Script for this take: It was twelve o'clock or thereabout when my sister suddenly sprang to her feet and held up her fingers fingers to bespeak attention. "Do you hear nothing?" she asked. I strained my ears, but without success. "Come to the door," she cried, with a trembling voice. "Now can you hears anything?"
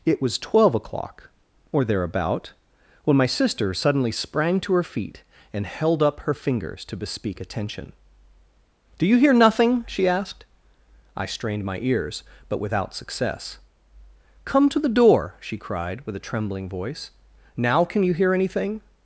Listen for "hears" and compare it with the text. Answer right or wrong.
wrong